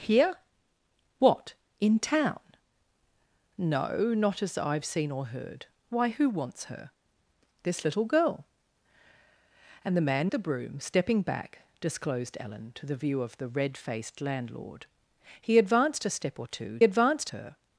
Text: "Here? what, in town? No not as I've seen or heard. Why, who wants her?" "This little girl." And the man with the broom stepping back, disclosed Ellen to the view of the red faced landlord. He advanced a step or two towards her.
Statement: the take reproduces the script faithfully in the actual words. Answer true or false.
false